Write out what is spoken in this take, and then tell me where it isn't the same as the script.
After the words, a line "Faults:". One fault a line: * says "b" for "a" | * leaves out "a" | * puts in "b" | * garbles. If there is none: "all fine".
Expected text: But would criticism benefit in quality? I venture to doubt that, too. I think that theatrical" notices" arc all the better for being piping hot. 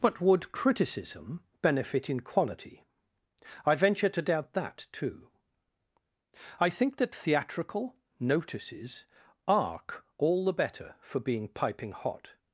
But would criticism benefit in quality? I venture to doubt that, too. I think that theatrical" notices" arc all the better for being piping hot.
Faults:
all fine